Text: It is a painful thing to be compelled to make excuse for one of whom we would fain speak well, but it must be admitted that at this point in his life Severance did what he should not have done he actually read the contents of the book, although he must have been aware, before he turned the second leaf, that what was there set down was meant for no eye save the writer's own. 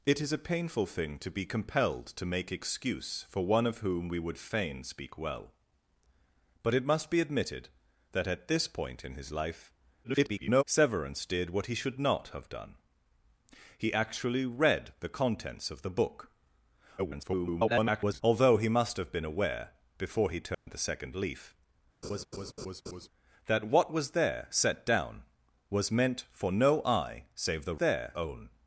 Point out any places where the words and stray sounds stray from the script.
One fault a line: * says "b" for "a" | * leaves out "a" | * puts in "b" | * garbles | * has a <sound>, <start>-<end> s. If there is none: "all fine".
* garbles
* garbles
* has a dropout, 20.5-20.7 s
* has a laugh, 22.0-23.1 s
* says "there" for "writer's"